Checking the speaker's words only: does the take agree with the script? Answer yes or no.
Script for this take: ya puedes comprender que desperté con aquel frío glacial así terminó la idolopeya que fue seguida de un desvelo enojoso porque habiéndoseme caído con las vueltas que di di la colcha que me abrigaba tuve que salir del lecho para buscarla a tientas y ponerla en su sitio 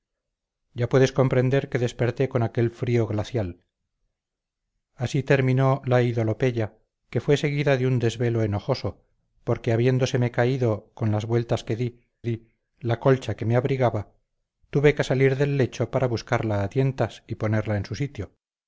yes